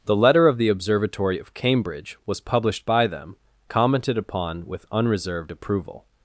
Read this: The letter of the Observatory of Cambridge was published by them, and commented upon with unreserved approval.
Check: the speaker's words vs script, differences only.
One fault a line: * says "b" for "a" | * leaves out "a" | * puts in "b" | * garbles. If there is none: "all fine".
* leaves out "and"